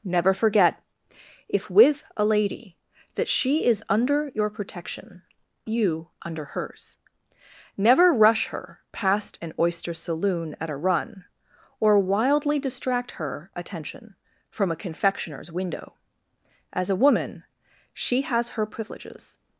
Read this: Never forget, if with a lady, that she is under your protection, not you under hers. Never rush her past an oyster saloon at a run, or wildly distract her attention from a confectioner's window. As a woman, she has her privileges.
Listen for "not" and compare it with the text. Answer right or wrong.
wrong